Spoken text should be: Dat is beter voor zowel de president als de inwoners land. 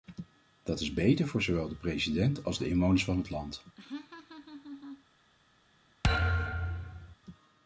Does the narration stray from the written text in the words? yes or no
yes